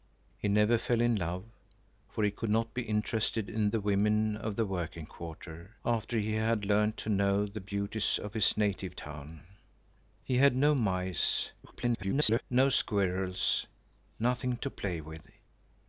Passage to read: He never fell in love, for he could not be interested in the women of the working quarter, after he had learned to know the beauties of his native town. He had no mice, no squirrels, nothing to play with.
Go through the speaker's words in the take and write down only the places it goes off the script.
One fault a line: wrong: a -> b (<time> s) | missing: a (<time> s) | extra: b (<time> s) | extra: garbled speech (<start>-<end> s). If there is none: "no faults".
extra: garbled speech (11.6-12.4 s)